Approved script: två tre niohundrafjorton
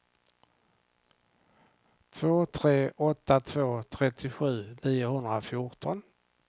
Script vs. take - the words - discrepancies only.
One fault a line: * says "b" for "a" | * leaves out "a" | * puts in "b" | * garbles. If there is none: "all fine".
* puts in "åtta två trettiosju"